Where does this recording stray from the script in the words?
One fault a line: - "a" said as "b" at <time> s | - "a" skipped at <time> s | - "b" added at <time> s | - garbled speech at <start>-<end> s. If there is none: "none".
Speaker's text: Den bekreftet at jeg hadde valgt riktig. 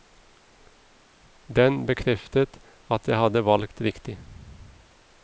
none